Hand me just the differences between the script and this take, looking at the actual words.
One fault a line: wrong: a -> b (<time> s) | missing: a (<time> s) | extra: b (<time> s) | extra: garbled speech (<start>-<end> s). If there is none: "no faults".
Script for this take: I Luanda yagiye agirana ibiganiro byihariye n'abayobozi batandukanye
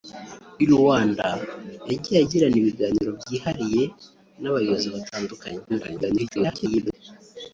extra: garbled speech (5.7-6.9 s)